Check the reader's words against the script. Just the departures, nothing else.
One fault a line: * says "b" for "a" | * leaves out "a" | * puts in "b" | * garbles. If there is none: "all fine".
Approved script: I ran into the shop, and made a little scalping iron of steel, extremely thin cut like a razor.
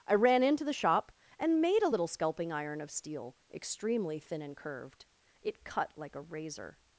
* puts in "and curved it"